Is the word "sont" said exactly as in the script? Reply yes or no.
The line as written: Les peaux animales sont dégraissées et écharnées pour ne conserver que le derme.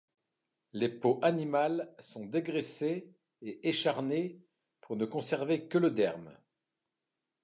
yes